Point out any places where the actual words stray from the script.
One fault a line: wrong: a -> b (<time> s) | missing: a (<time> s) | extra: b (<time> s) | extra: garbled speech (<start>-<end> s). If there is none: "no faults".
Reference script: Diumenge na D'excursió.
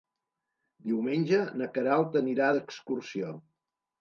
extra: Queralt anirà (1.8 s)